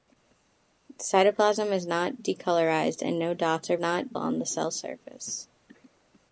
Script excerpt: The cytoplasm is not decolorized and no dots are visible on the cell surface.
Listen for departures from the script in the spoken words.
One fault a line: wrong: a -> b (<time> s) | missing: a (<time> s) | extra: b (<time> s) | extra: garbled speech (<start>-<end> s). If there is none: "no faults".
wrong: visible -> not (3.8 s)